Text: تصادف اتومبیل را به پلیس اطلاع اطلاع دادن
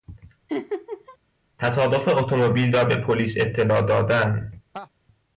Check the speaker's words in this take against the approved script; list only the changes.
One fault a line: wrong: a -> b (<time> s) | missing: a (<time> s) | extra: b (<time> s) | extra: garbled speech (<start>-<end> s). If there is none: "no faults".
missing: اطلاع (3.8 s)